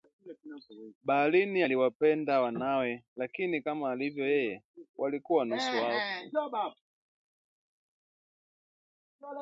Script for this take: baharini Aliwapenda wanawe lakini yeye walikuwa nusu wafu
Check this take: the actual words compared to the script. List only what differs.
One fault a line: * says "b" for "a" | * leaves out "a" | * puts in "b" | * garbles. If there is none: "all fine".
* puts in "kama alivyo"